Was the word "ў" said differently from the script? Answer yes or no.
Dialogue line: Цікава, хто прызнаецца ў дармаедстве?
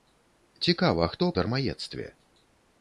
yes